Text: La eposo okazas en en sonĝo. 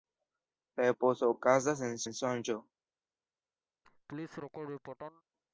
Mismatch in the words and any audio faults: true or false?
true